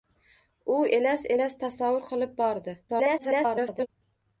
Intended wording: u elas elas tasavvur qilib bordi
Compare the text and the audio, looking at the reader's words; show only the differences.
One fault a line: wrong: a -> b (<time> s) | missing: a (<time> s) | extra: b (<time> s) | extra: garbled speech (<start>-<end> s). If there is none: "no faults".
extra: garbled speech (2.9-3.9 s)